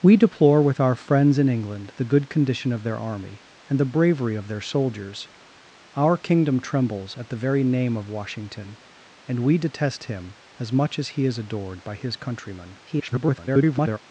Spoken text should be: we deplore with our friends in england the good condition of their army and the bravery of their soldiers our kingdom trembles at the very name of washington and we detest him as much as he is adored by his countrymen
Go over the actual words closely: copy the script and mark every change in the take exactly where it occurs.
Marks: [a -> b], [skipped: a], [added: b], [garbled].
we deplore with our friends in england the good condition of their army and the bravery of their soldiers our kingdom trembles at the very name of washington and we detest him as much as he is adored by his countrymen [garbled]